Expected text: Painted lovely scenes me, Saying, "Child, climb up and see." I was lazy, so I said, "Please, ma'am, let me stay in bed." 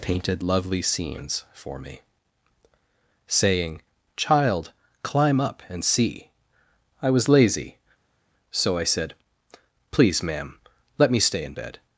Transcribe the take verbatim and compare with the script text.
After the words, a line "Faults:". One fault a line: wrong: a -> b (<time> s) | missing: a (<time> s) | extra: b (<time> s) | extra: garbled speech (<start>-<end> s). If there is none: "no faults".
Painted lovely scenes for me, Saying, "Child, climb up and see." I was lazy, so I said, "Please, ma'am, let me stay in bed."
Faults:
extra: for (1.5 s)